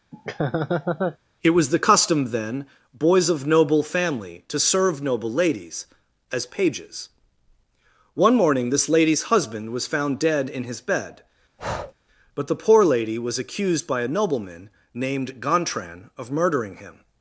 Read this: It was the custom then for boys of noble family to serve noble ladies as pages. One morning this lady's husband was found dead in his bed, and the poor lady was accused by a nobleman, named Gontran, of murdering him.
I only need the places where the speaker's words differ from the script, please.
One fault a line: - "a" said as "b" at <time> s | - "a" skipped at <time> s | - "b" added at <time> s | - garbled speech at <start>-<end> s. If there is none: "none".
- "for" skipped at 2.7 s
- "and" said as "but" at 12.3 s